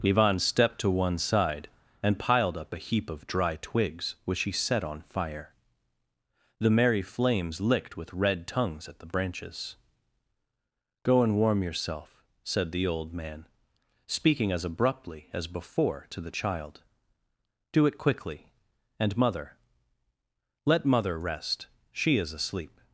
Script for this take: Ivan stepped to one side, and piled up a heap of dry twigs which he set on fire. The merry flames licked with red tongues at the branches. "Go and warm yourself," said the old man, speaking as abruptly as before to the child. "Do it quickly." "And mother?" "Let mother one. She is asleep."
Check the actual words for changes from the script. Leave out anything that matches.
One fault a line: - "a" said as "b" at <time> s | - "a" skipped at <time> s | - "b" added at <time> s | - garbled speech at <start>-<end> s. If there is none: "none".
- "one" said as "rest" at 21.2 s